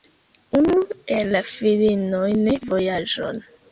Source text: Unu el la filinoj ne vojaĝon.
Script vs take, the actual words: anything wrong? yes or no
no